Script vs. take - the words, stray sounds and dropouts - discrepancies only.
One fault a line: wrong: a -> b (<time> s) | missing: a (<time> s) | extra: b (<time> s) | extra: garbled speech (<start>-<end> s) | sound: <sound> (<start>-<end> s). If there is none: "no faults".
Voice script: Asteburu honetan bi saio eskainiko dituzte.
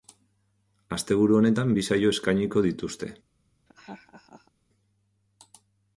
sound: laugh (3.7-4.5 s)